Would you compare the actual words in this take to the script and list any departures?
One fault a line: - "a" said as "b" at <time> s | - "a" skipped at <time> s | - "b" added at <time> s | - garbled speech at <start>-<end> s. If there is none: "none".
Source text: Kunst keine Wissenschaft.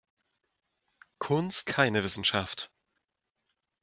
none